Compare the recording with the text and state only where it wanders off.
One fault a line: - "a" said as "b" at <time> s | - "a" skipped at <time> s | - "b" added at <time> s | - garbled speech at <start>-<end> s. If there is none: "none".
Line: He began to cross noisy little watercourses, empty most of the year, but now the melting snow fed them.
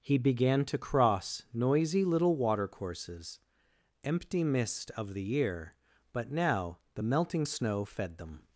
- "most" said as "mist" at 4.4 s